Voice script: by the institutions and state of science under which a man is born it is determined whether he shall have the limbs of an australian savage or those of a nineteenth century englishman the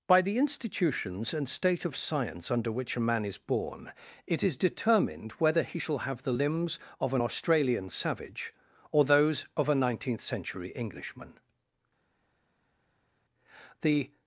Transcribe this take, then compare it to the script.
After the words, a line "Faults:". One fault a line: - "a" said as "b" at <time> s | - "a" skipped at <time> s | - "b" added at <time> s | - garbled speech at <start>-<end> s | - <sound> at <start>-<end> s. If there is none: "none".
by the institutions and state of science under which a man is born it is determined whether he shall have the limbs of an australian savage or those of a nineteenth century englishman the
Faults:
none